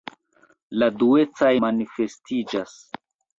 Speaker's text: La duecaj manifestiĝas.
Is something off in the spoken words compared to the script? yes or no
no